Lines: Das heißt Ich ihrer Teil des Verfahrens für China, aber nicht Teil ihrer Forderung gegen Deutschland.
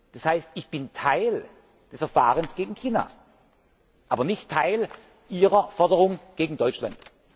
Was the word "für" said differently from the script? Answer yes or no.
yes